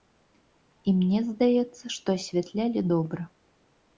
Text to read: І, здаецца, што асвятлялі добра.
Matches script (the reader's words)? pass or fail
fail